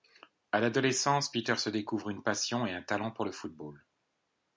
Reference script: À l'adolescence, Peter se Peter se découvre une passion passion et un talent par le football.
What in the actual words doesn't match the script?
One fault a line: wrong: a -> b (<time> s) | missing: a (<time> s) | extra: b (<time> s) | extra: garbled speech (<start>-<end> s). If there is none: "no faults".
missing: Peter se (1.7 s)
missing: passion (2.6 s)
wrong: par -> pour (3.1 s)